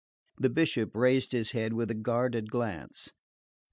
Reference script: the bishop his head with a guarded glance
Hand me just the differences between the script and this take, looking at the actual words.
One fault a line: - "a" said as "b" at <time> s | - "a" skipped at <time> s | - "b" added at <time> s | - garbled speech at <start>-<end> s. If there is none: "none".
- "raised" added at 0.9 s